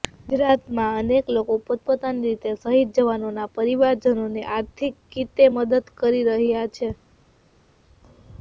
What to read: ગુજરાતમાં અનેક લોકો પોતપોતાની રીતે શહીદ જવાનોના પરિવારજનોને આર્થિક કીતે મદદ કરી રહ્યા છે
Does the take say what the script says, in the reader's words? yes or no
yes